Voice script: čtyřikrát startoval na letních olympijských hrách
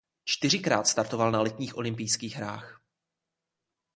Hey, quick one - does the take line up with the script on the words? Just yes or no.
yes